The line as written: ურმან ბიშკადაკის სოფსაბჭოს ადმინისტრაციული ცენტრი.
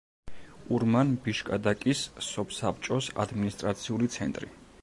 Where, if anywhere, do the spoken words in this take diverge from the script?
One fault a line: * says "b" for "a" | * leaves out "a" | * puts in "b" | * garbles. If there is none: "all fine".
all fine